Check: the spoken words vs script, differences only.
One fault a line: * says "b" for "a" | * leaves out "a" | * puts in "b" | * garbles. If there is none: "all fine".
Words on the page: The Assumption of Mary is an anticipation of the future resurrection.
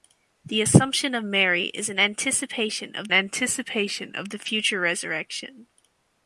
* puts in "anticipation of"